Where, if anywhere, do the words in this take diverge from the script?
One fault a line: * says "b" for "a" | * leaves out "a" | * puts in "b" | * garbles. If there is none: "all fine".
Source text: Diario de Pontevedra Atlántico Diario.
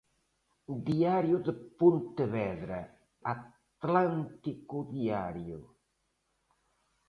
all fine